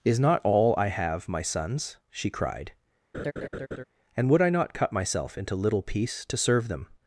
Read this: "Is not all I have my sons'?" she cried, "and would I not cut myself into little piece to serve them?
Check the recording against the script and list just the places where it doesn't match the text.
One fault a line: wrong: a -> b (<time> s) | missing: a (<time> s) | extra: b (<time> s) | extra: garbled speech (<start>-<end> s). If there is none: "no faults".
no faults